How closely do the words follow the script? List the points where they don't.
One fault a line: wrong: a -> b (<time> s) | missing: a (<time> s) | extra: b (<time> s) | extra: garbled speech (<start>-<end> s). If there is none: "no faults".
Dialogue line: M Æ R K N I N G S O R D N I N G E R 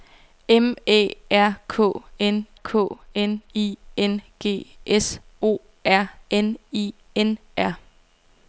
extra: K N (2.6 s)
missing: D (6.1 s)
missing: G E (7.4 s)